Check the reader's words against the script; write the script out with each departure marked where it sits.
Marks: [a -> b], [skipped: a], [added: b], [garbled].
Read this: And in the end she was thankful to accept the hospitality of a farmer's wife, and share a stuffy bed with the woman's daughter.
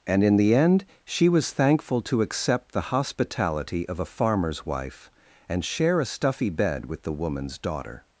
And in the end she was thankful to accept the hospitality of a farmer's wife, and share a stuffy bed with the woman's daughter.